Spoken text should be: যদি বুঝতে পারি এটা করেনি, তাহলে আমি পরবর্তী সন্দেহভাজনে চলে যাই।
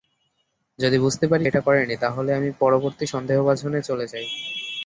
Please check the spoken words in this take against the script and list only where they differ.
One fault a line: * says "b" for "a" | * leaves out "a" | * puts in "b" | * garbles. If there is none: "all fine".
all fine